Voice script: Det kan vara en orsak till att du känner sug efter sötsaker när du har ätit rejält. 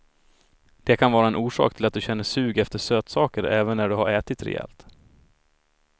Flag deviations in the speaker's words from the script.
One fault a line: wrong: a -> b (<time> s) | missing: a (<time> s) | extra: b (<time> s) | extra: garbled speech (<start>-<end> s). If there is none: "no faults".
extra: även (3.4 s)